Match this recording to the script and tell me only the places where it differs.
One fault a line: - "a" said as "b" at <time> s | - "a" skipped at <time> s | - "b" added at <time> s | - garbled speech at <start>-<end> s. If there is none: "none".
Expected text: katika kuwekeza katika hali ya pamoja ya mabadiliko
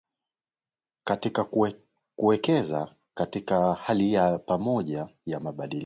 none